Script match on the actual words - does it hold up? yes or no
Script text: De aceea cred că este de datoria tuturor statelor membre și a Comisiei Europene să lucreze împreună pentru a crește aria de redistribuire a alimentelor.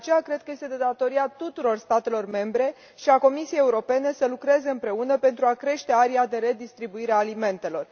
yes